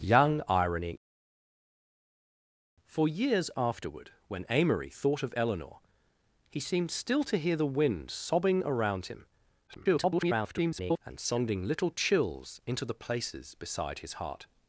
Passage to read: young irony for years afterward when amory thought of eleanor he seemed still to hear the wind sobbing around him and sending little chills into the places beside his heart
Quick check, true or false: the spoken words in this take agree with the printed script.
false